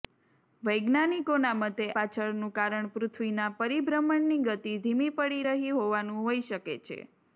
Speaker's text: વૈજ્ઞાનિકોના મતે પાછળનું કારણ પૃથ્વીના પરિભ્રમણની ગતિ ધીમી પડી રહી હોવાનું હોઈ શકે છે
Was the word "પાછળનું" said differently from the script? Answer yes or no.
no